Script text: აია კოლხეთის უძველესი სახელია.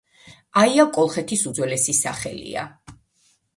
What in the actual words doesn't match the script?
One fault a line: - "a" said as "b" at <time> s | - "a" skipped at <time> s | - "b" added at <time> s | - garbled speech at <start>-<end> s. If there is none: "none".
none